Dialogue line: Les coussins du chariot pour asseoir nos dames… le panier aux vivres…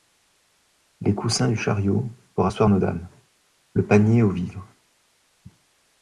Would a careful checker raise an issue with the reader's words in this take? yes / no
no